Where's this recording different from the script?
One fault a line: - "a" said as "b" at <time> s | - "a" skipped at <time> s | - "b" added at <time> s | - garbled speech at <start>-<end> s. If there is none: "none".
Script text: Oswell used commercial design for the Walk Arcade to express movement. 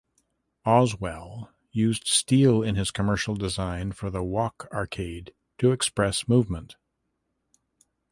- "steel in his" added at 2.1 s